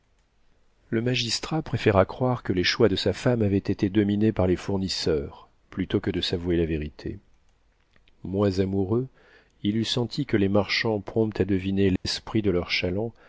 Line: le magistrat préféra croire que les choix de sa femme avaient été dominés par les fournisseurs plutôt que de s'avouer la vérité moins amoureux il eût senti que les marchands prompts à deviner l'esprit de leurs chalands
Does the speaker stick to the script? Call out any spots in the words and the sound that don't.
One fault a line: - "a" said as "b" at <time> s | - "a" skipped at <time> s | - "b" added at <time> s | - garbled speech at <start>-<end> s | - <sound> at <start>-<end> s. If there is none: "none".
- dropout at 12.0-12.0 s